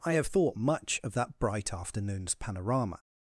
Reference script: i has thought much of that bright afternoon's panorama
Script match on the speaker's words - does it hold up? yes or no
no